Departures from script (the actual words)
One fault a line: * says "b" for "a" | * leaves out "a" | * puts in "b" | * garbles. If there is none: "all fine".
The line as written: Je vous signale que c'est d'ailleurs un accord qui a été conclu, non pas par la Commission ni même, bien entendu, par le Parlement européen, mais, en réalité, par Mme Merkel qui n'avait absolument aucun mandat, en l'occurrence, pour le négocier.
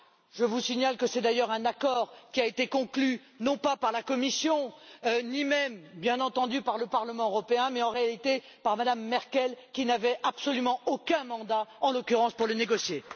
all fine